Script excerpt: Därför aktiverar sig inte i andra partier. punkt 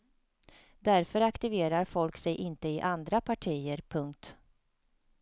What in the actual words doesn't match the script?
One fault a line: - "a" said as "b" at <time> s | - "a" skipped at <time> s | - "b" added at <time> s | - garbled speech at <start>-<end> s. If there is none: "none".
- "folk" added at 1.8 s